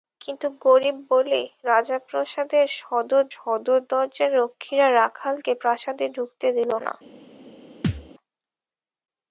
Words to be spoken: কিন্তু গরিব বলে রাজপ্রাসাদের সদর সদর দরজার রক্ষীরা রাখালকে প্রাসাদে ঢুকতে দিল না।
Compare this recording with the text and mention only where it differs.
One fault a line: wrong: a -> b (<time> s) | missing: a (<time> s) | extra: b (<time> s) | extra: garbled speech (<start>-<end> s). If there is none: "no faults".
no faults